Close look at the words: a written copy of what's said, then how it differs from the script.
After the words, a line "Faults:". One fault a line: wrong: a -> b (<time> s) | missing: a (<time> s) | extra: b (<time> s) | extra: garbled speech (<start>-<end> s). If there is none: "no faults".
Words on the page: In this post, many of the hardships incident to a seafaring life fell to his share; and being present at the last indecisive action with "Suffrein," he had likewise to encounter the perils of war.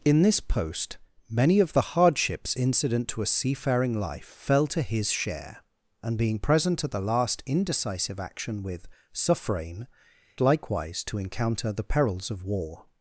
In this post, many of the hardships incident to a seafaring life fell to his share; and being present at the last indecisive action with "Suffrein," likewise to encounter the perils of war.
Faults:
missing: he had (9.9 s)